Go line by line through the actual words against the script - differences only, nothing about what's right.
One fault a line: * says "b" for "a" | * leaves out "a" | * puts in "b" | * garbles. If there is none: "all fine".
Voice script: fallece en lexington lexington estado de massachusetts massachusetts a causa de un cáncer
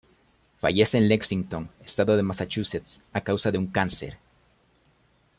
* leaves out "lexington"
* leaves out "massachusetts"